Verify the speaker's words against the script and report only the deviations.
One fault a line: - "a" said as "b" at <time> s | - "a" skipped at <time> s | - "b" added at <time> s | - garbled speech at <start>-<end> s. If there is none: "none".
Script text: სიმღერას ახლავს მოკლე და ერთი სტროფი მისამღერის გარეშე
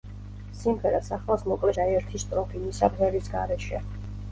none